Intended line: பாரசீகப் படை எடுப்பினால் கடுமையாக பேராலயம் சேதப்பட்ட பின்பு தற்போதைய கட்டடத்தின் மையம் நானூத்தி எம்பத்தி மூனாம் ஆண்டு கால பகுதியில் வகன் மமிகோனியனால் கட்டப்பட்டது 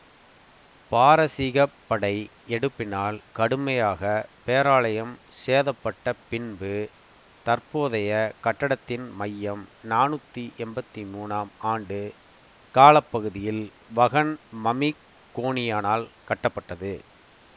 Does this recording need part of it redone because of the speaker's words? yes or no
no